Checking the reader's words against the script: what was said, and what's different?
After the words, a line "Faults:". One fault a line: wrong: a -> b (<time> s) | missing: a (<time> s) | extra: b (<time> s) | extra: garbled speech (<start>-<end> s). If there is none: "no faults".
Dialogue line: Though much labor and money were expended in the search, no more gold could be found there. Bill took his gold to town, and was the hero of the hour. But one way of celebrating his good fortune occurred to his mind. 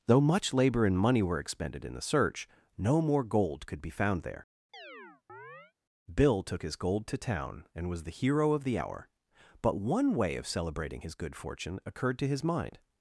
Though much labor and money were expended in the search, no more gold could be found there. Bill took his gold to town, and was the hero of the hour. But one way of celebrating his good fortune occurred to his mind.
Faults:
no faults